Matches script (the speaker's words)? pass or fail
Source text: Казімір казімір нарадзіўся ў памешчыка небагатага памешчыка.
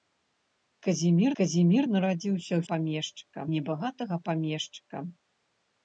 pass